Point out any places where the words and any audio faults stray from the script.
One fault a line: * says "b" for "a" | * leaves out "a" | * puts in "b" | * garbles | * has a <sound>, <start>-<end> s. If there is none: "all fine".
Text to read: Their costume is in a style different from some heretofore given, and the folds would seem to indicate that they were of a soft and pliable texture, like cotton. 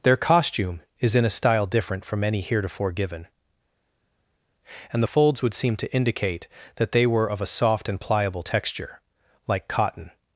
* says "any" for "some"